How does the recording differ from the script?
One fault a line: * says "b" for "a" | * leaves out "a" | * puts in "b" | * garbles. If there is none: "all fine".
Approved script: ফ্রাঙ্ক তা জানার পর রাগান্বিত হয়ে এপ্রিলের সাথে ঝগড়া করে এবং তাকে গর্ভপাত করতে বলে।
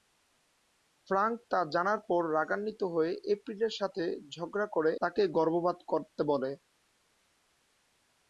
* leaves out "এবং"